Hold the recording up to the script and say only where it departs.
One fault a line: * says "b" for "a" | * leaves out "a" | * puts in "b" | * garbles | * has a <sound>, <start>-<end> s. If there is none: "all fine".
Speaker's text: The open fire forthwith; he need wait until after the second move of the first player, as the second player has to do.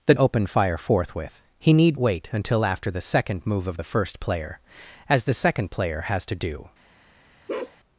* has a bark, 7.5-7.8 s